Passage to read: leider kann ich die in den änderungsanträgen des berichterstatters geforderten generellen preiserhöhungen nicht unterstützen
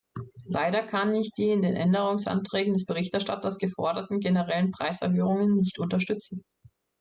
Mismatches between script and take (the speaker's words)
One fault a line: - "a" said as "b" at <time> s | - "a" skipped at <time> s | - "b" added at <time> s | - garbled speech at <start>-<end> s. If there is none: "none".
none